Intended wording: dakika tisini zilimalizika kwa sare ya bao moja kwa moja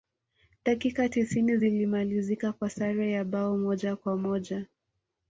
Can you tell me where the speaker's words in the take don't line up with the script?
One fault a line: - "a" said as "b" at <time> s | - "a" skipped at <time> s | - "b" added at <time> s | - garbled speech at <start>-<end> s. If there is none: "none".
none